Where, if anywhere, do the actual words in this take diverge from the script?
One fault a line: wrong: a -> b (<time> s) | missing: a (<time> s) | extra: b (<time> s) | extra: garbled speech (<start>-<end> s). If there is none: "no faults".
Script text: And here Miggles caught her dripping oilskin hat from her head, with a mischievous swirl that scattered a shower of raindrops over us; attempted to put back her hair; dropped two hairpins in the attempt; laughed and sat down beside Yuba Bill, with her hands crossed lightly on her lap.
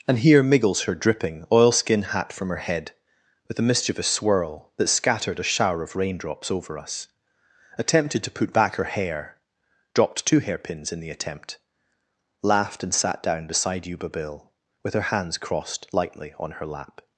missing: caught (0.8 s)